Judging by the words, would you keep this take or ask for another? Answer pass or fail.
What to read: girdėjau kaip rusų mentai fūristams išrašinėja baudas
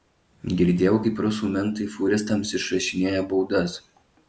pass